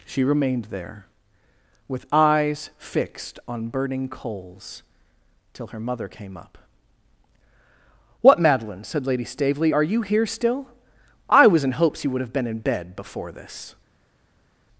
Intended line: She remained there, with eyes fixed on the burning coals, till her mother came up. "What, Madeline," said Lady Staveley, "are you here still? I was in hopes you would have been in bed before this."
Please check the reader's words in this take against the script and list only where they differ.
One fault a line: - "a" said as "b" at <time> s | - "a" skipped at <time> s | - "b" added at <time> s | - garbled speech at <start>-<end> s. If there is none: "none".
- "the" skipped at 3.7 s